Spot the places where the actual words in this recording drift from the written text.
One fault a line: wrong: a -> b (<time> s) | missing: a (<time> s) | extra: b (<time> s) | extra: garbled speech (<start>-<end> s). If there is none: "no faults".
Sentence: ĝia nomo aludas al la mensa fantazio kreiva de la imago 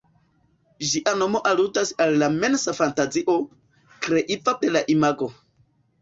no faults